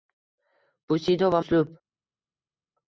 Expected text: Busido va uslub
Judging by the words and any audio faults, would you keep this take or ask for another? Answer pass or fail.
pass